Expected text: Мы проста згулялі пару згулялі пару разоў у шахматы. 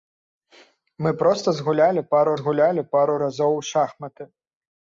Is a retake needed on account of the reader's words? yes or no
no